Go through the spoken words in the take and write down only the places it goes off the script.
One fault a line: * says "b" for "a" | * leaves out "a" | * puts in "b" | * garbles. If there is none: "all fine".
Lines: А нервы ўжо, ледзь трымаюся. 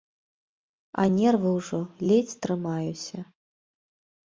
all fine